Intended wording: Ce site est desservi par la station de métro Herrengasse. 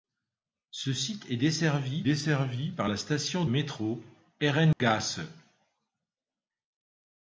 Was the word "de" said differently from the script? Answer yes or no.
yes